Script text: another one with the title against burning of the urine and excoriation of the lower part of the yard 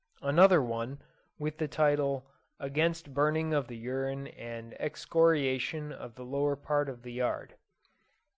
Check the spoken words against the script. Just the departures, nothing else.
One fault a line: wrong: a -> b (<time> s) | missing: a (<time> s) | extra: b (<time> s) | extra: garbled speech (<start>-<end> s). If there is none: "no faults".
no faults